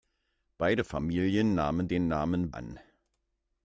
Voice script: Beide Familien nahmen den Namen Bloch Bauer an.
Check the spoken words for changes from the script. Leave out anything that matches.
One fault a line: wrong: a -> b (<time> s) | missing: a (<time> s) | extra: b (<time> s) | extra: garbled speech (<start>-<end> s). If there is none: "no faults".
missing: Bloch Bauer (2.5 s)